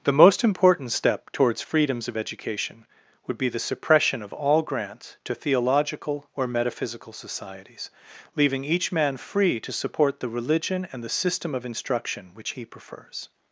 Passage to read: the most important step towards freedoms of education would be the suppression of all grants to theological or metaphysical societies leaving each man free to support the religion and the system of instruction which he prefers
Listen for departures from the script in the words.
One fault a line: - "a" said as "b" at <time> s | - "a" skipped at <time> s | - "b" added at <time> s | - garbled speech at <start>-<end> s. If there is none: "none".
none